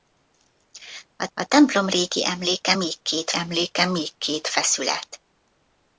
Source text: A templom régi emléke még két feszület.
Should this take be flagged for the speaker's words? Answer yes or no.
yes